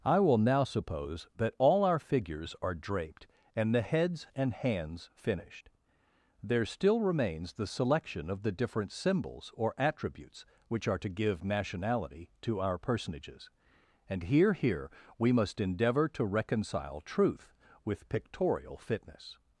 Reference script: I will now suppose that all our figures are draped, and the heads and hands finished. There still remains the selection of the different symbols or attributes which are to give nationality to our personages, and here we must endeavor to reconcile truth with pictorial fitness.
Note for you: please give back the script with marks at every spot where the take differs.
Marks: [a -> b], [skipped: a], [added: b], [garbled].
I will now suppose that all our figures are draped, and the heads and hands finished. There still remains the selection of the different symbols or attributes which are to give nationality to our personages, and here [added: here] we must endeavor to reconcile truth with pictorial fitness.